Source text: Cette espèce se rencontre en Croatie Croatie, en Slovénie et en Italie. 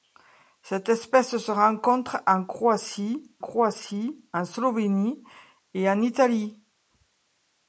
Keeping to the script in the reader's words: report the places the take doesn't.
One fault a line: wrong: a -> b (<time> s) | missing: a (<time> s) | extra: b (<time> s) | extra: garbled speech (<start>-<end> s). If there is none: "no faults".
no faults